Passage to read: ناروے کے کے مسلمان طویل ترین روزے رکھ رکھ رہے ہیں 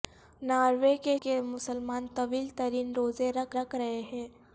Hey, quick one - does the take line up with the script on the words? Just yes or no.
yes